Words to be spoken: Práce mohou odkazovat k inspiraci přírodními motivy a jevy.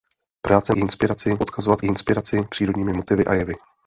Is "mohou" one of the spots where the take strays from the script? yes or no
yes